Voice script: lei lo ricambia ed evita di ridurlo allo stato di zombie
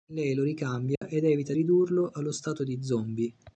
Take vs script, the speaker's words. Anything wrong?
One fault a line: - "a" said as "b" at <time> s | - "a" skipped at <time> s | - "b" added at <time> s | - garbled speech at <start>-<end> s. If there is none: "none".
- "di" skipped at 1.5 s